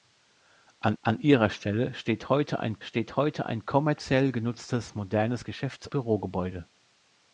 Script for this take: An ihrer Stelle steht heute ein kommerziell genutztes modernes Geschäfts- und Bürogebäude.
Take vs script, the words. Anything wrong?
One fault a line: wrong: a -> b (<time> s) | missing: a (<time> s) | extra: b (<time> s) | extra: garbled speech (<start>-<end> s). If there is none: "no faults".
extra: an (1.0 s)
extra: steht heute ein (2.8 s)
missing: und (5.9 s)